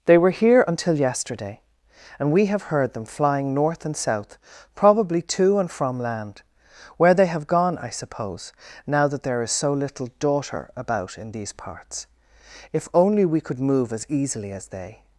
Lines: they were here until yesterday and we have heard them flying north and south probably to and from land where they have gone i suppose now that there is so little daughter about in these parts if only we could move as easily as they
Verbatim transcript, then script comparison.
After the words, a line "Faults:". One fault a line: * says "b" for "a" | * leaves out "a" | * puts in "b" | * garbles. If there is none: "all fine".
they were here until yesterday and we have heard them flying north and south probably to and from land where they have gone i suppose now that there is so little daughter about in these parts if only we could move as easily as they
Faults:
all fine